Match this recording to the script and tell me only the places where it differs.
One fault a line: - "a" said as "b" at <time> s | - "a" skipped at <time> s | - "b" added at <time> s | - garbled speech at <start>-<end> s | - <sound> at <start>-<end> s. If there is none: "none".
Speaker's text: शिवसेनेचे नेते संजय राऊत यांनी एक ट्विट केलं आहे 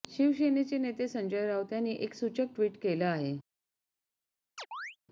- "सूचक" added at 2.1 s
- chirp at 4.6-5.0 s